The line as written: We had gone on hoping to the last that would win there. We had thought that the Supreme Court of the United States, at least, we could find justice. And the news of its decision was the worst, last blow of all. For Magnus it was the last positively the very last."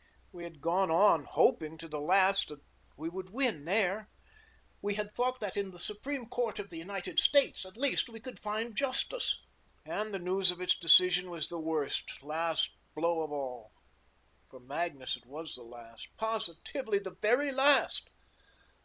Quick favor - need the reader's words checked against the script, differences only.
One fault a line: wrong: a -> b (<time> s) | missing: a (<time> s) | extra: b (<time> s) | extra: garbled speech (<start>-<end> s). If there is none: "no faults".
extra: we (3.0 s)
extra: in (5.6 s)